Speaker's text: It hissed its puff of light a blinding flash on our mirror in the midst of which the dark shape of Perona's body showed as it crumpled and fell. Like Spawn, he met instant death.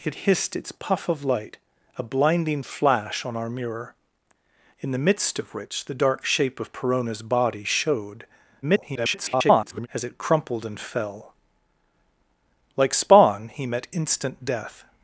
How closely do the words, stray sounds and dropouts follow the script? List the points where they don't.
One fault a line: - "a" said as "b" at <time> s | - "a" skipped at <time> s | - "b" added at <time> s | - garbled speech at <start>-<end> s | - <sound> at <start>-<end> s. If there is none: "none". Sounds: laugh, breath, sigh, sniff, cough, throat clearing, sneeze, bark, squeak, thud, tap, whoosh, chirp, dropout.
- garbled speech at 8.6-9.9 s